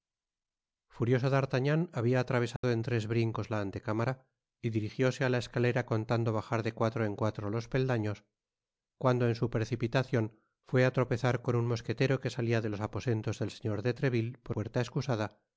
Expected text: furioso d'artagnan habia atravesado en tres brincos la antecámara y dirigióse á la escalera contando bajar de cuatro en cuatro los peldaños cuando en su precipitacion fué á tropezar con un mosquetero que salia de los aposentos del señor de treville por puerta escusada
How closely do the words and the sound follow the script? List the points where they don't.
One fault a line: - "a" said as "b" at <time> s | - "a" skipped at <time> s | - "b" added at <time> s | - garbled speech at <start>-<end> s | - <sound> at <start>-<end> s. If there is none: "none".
- dropout at 2.6-2.6 s